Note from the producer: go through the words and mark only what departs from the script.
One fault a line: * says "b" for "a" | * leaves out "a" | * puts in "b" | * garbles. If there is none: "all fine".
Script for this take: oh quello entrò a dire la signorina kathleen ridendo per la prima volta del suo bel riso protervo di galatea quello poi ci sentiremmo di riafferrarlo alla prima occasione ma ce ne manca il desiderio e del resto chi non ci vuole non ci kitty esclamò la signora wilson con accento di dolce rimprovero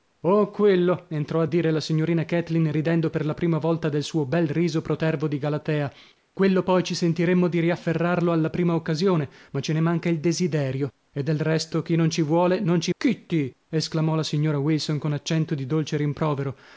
all fine